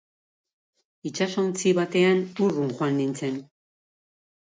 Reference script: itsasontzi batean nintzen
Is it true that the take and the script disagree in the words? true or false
true